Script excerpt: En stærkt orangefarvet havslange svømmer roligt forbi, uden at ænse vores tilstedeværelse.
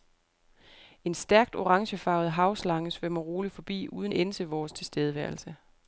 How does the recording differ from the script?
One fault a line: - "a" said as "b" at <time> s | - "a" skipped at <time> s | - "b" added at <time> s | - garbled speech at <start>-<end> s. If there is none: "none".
- "at" skipped at 4.1 s